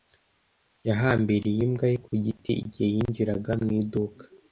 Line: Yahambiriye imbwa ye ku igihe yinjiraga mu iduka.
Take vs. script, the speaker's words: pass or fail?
fail